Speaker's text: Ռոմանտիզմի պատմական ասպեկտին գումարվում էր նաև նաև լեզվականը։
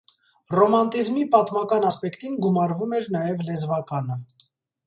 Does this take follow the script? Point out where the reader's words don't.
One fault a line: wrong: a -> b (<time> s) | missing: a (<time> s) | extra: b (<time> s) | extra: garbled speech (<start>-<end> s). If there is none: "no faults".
missing: նաև (3.4 s)